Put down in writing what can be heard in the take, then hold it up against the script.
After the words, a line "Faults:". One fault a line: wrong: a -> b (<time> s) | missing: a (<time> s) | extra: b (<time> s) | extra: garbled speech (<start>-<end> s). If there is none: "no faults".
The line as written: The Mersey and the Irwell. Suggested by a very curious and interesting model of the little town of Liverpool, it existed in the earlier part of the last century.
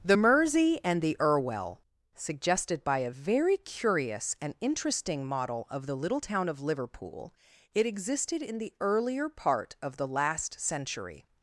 The Mersey and the Irwell. Suggested by a very curious and interesting model of the little town of Liverpool, it existed in the earlier part of the last century.
Faults:
no faults